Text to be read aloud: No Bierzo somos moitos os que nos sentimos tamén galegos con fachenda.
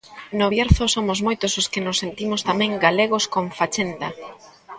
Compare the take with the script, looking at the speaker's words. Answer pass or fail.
pass